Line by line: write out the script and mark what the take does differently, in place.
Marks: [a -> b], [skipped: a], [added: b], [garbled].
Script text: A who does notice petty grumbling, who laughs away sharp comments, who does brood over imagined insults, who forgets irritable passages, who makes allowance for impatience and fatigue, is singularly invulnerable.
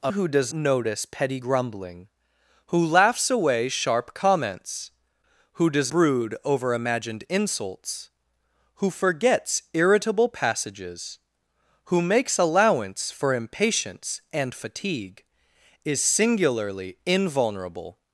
A who does notice petty grumbling, who laughs away sharp comments, who does brood over imagined insults, who forgets irritable passages, who makes allowance for impatience and fatigue, is singularly invulnerable.